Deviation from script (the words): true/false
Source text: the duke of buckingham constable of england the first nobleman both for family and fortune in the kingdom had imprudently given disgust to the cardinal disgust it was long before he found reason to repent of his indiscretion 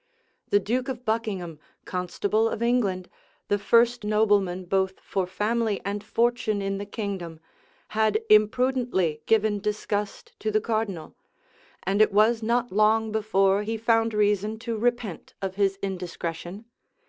true